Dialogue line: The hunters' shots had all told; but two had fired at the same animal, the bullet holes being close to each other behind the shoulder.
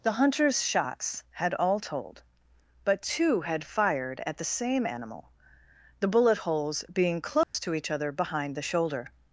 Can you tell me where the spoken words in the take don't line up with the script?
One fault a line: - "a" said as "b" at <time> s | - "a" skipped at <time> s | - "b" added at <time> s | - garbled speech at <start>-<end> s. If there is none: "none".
none